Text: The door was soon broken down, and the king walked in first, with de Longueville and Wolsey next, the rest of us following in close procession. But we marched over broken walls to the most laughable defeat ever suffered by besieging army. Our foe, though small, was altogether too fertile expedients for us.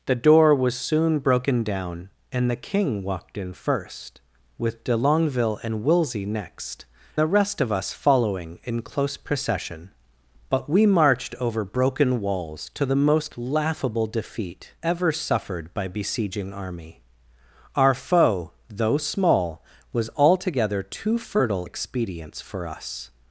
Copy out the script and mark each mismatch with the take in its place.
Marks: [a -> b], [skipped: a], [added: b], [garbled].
The door was soon broken down, and the king walked in first, with de Longueville and Wolsey next, the rest of us following in close procession. But we marched over broken walls to the most laughable defeat ever suffered by besieging army. Our foe, though small, was altogether too fertile expedients for us.